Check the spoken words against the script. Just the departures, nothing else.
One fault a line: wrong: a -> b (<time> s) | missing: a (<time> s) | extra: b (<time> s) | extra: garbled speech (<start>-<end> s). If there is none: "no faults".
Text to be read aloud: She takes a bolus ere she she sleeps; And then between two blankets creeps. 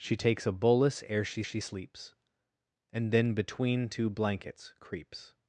no faults